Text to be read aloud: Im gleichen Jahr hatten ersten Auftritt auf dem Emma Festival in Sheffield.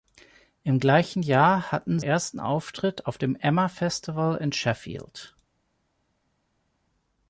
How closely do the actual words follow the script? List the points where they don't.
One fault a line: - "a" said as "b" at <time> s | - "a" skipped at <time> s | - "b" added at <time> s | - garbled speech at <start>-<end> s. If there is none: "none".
none